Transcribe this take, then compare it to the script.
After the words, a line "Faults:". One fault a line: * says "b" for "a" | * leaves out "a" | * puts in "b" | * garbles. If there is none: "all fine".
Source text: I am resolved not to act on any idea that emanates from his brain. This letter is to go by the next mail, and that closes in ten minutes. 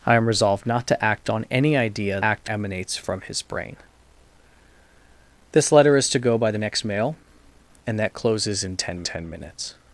I am resolved not to act on any idea act emanates from his brain. This letter is to go by the next mail, and that closes in ten ten minutes.
Faults:
* says "act" for "that"
* puts in "ten"